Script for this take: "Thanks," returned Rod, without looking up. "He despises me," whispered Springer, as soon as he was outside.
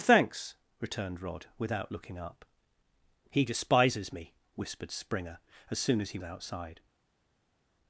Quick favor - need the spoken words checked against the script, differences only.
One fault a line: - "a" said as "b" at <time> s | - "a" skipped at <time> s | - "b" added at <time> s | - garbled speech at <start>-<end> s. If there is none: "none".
- "was" skipped at 6.2 s